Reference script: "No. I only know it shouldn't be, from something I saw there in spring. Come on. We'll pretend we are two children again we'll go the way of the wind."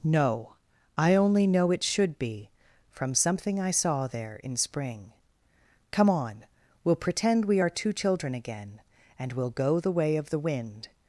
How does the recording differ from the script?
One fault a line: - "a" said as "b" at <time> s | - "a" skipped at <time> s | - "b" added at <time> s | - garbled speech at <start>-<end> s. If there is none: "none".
- "shouldn't" said as "should" at 1.8 s
- "and" added at 9.2 s